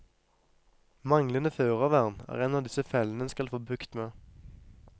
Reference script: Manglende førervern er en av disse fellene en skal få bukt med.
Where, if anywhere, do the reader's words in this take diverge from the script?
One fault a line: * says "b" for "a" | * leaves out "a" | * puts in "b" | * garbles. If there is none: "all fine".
all fine